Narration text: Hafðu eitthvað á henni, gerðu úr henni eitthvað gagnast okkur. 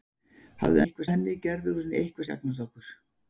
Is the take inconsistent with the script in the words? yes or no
no